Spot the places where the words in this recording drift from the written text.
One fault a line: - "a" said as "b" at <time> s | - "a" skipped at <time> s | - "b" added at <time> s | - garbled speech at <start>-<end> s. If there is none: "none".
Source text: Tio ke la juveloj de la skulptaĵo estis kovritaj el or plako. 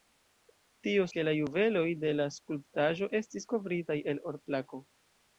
none